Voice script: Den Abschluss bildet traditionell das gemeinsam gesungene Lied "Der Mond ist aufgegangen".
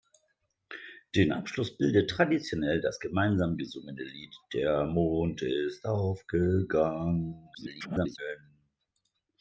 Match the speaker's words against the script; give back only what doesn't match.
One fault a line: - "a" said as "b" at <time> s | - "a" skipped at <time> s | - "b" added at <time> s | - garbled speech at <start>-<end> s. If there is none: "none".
- garbled speech at 7.5-8.2 s